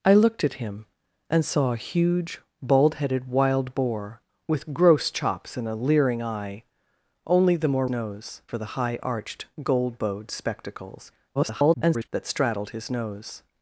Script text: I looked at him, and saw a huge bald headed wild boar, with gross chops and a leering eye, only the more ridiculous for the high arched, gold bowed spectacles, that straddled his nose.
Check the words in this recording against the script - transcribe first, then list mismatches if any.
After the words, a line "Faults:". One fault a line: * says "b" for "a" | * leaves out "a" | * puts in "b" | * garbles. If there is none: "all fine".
I looked at him, and saw a huge bald headed wild boar, with gross chops and a leering eye, only the more nose for the high arched, gold bowed spectacles, [garbled] that straddled his nose.
Faults:
* says "nose" for "ridiculous"
* garbles